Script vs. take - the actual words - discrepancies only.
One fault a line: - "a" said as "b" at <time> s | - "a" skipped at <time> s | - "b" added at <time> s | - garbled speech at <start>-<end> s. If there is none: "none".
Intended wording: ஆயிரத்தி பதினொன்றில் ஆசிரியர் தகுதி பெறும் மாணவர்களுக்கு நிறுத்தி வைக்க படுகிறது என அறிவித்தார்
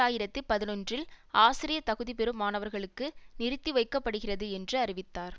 - "என" said as "என்று" at 4.5 s